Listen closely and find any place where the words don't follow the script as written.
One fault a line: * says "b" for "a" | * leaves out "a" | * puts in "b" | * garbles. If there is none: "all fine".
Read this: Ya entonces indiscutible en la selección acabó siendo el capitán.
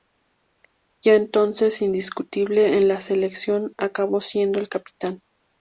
all fine